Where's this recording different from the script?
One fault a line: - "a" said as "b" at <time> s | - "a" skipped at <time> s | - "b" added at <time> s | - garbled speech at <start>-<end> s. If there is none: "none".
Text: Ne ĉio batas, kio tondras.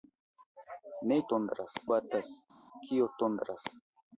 - "ĉio" said as "tondras" at 1.3 s